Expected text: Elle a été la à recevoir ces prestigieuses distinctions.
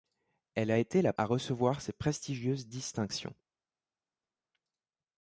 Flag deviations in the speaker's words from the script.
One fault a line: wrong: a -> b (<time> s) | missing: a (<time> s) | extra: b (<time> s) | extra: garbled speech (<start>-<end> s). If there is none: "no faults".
no faults